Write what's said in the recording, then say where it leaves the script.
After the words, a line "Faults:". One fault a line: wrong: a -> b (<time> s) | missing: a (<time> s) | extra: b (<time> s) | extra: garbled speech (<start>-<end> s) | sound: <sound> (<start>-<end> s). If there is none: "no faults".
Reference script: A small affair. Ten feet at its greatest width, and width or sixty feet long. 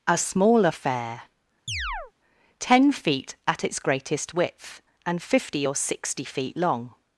A small affair. Ten feet at its greatest width, and fifty or sixty feet long.
Faults:
sound: chirp (1.7-2.1 s)
wrong: width -> fifty (5.2 s)